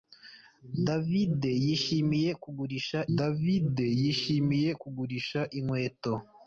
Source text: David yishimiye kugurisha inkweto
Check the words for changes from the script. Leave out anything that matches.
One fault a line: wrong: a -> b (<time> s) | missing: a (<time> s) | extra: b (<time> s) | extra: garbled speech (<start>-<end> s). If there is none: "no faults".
extra: david yishimiye kugurisha (3.2 s)